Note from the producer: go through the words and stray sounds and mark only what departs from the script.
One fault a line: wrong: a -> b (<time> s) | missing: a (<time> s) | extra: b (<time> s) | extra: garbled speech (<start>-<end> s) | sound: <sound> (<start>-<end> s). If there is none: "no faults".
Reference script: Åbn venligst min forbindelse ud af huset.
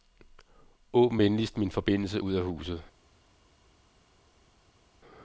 no faults